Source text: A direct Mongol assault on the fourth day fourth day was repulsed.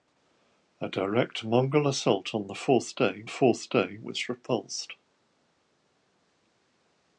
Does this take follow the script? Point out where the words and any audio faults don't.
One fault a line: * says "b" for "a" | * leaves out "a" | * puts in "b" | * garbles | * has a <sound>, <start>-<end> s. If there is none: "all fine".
all fine